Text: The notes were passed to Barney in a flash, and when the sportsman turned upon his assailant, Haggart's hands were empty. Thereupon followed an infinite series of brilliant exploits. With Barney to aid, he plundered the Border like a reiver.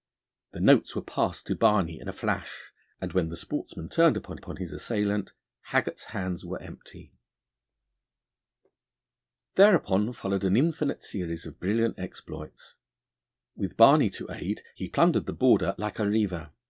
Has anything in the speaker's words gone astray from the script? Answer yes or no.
yes